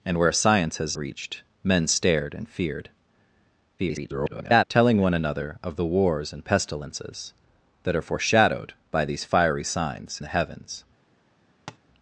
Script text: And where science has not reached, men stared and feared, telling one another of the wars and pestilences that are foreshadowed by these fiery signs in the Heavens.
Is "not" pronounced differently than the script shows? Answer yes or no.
yes